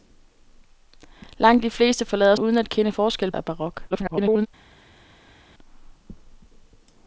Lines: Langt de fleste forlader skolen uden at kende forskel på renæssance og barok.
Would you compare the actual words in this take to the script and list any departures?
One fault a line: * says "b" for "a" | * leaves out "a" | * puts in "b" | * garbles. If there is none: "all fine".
* leaves out "skolen"
* leaves out "på renæssance"
* garbles